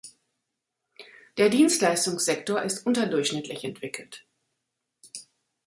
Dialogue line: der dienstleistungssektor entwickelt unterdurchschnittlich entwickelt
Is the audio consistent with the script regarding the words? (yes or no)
no